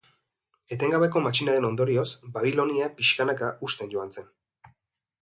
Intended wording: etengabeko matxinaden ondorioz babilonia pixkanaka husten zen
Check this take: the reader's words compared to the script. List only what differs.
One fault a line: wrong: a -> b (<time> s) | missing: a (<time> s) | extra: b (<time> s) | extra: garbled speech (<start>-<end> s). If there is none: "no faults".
extra: joan (4.0 s)